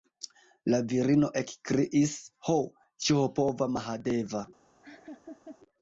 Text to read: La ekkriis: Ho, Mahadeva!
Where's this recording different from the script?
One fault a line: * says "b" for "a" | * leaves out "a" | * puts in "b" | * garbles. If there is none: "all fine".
* puts in "virino"
* puts in "ĉiopova"